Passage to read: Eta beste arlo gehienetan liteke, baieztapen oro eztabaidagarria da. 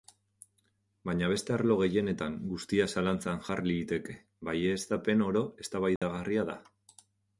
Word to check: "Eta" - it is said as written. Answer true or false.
false